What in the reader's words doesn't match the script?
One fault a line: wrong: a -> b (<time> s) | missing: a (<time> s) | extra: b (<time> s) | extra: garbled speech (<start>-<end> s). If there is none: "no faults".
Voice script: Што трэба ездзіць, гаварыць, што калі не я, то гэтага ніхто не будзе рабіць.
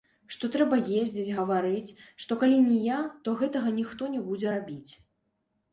no faults